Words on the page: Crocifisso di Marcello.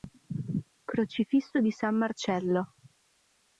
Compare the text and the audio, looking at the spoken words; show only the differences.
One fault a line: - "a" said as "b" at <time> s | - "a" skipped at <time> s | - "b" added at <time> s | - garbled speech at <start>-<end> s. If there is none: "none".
- "San" added at 1.7 s